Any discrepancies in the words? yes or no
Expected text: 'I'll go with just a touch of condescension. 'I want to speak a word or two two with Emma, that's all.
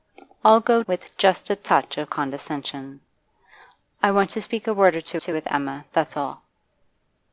no